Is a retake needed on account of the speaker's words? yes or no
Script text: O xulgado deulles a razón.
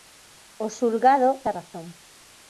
yes